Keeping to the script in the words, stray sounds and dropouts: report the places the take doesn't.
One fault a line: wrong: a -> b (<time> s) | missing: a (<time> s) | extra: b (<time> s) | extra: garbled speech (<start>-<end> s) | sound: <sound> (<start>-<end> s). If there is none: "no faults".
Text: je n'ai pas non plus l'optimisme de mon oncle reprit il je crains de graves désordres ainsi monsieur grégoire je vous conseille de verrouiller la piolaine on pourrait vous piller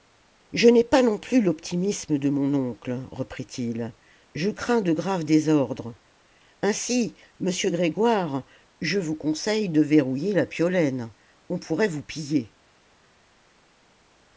no faults